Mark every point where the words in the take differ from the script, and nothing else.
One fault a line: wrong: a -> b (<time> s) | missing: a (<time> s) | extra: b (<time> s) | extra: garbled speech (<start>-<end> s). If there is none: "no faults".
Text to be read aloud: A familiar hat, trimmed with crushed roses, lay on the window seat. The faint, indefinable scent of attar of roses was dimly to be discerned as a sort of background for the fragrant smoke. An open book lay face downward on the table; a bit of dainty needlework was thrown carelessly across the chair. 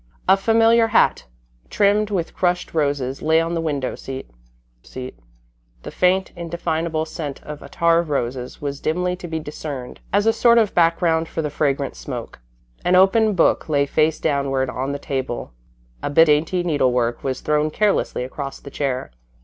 extra: seat (4.8 s)
missing: of (16.3 s)